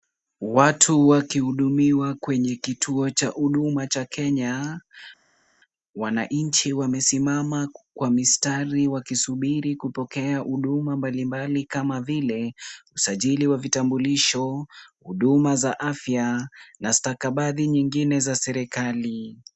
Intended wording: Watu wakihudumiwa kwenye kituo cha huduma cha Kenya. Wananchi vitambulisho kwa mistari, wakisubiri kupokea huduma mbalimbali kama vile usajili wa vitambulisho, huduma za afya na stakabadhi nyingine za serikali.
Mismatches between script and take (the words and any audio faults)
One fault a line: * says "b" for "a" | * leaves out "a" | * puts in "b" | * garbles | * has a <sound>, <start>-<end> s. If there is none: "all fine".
* says "wamesimama" for "vitambulisho"